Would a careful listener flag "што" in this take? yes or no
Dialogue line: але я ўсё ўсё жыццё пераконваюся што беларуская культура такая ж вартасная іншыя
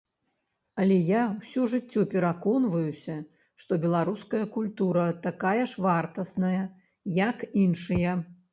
no